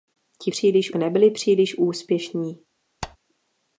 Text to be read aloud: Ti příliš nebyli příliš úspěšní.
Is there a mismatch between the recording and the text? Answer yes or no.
no